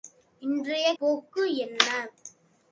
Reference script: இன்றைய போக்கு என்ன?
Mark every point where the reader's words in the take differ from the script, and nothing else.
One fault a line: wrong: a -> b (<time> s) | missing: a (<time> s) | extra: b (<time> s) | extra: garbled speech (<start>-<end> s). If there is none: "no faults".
no faults